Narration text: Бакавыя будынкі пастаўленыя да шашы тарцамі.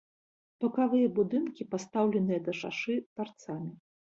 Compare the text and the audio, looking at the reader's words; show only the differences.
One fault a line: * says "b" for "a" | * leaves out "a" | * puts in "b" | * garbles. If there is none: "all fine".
all fine